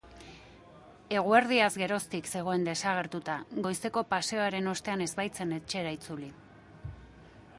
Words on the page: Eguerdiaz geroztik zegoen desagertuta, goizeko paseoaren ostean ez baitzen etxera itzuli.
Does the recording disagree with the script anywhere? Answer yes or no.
no